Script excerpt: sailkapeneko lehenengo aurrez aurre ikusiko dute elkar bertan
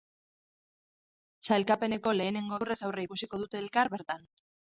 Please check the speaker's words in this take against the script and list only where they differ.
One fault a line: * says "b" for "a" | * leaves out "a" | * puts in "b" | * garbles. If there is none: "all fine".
all fine